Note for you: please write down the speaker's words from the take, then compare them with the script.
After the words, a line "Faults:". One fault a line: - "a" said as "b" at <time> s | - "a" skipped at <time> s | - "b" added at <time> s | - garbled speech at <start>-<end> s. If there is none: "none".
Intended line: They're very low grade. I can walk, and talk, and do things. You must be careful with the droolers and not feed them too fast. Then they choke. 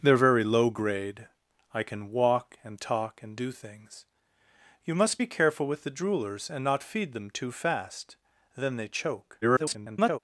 They're very low grade. I can walk, and talk, and do things. You must be careful with the droolers and not feed them too fast. Then they choke. [garbled]
Faults:
- garbled speech at 9.4-10.2 s